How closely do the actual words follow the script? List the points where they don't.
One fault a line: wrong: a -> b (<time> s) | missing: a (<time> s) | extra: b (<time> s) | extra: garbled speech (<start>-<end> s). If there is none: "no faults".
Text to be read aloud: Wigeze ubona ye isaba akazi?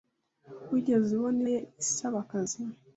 no faults